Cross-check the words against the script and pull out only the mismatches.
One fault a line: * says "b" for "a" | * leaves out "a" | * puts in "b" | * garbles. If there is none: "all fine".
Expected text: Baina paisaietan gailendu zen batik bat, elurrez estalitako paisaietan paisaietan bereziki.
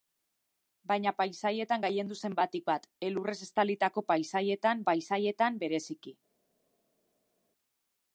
all fine